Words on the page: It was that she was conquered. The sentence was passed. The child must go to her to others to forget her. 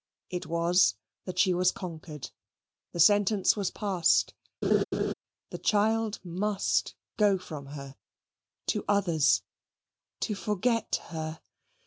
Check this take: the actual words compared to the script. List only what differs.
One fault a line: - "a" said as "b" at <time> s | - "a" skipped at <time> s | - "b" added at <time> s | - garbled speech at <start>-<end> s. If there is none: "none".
- "to" said as "from" at 7.4 s